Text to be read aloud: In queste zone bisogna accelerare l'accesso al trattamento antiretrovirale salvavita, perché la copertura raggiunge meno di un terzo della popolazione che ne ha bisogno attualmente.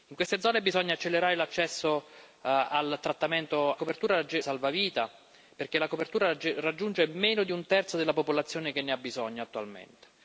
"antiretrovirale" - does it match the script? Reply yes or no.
no